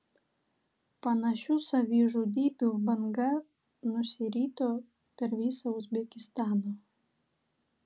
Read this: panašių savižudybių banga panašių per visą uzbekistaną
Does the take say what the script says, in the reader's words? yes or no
no